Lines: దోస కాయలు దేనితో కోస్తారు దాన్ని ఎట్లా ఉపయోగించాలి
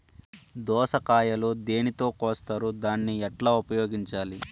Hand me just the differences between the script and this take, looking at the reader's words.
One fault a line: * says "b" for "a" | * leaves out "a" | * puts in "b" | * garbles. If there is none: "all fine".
all fine